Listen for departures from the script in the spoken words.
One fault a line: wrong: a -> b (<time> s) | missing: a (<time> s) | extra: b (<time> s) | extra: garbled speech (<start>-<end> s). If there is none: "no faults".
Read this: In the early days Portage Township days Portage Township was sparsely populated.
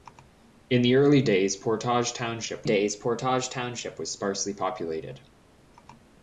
no faults